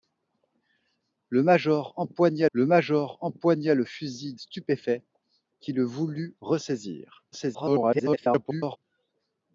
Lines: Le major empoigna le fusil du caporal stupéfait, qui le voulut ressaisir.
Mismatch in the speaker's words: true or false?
true